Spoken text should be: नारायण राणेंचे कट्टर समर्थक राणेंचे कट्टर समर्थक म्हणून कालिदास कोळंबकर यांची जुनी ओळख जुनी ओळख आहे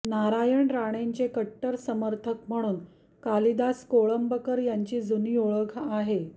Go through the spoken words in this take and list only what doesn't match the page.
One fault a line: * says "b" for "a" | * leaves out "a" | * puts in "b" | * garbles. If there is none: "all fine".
* leaves out "राणेंचे कट्टर समर्थक"
* leaves out "जुनी ओळख"